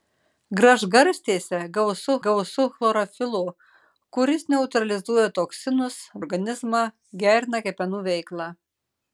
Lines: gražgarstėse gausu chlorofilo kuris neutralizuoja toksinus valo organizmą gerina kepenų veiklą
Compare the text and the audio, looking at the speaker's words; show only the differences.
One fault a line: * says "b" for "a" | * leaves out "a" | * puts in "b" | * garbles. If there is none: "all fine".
* puts in "gausu"
* leaves out "valo"